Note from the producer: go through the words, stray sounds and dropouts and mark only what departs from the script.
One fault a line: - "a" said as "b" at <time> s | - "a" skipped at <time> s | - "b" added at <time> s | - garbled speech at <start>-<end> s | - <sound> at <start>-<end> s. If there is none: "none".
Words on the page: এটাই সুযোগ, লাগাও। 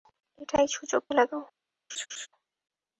- laugh at 1.9-2.3 s